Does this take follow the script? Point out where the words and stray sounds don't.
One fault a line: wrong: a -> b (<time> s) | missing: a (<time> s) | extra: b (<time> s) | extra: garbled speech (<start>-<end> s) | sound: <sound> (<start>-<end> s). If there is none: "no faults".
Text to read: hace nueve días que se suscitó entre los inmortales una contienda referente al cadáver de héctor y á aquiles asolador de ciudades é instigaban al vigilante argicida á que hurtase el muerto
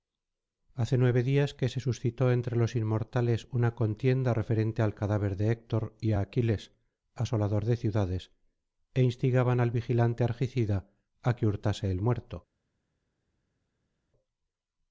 no faults